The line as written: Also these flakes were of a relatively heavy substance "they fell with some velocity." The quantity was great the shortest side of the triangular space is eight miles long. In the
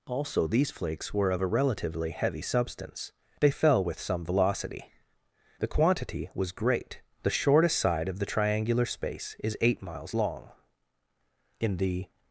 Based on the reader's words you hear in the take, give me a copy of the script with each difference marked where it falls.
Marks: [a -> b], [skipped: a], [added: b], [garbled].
Also these flakes were of a relatively heavy substance "they fell with some velocity." The quantity was great the shortest side of the triangular space is eight miles long. In the